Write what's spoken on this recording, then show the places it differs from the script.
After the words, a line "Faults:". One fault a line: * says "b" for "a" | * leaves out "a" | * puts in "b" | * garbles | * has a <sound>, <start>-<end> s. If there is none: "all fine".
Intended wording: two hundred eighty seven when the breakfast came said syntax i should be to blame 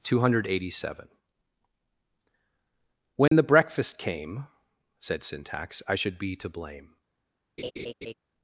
two hundred eighty seven when the breakfast came said syntax i should be to blame
Faults:
* has a dropout, 3.3-3.3 s
* has a laugh, 7.6-8.1 s